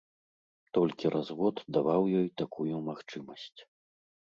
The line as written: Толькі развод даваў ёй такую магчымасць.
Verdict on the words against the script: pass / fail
pass